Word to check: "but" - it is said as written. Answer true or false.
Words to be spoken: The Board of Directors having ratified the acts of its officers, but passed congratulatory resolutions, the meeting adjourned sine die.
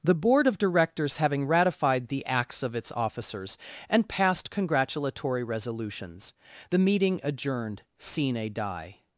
false